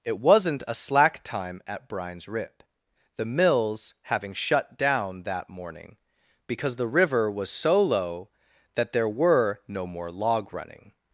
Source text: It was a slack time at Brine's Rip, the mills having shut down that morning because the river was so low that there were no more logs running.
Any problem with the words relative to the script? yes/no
yes